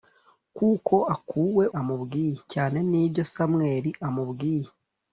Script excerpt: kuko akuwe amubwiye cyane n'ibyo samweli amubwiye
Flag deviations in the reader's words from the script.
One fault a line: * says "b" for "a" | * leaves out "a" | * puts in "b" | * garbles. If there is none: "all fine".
all fine